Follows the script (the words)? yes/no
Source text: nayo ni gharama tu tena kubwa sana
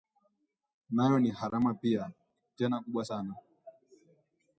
no